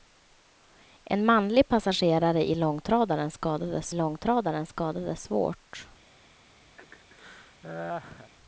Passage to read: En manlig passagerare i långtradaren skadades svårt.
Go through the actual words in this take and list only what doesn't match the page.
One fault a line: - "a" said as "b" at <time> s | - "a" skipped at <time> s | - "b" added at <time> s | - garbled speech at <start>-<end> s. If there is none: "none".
- "långtradaren skadades" added at 3.9 s